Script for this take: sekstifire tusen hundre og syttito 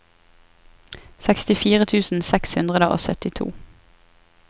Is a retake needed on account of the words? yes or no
yes